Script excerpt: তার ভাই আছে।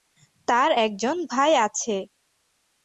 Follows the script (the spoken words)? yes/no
no